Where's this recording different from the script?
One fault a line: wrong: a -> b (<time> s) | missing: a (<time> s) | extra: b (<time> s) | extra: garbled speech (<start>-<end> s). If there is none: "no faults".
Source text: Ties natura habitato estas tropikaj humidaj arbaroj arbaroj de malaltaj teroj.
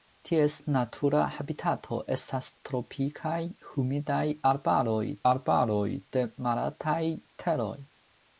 no faults